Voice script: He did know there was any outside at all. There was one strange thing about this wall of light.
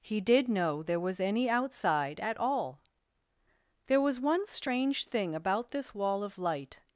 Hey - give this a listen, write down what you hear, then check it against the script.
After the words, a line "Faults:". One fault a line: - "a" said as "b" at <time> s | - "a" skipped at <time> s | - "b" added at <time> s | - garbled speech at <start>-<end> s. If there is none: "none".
He did know there was any outside at all. There was one strange thing about this wall of light.
Faults:
none